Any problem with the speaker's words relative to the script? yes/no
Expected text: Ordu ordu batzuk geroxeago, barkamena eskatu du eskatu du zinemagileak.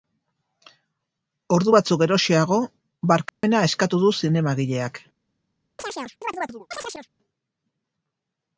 yes